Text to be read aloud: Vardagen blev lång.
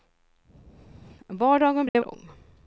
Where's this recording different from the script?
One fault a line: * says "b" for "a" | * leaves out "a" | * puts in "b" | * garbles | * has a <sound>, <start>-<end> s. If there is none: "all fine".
* has a dropout, 1.9-1.9 s